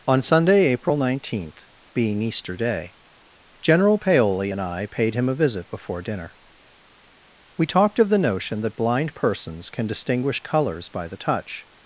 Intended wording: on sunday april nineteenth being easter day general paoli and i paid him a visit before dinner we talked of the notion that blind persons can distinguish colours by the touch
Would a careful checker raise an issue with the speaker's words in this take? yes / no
no